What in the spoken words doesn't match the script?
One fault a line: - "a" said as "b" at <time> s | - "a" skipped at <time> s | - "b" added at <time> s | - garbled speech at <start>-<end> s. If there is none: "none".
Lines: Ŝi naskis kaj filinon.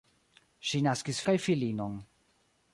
none